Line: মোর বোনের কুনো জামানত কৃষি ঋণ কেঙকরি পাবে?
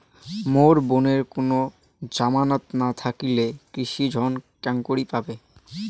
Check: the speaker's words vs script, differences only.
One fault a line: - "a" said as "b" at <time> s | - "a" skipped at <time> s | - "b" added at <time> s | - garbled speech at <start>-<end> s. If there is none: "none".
- "না থাকিলে" added at 2.8 s